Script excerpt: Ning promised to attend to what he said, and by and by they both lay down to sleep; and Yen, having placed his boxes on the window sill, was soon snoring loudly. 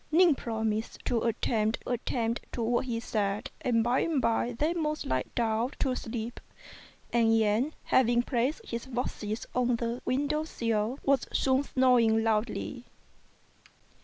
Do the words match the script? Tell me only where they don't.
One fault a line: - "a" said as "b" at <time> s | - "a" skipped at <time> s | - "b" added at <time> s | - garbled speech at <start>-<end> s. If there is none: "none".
- "attend" added at 1.9 s